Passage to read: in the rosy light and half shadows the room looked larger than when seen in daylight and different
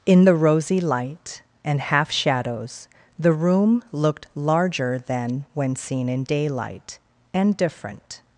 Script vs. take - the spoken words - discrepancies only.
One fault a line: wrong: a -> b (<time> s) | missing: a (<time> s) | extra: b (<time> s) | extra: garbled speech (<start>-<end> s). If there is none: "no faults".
no faults